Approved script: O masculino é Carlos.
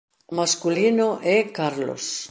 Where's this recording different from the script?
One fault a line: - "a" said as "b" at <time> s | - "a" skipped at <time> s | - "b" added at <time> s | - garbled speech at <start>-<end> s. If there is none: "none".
none